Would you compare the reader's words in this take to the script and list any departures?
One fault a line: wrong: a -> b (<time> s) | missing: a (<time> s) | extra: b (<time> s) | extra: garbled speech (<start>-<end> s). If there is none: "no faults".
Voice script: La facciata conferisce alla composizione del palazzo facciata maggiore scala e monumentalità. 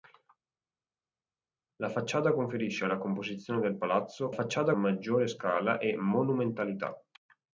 no faults